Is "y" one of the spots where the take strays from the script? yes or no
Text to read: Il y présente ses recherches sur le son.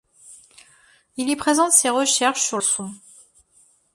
no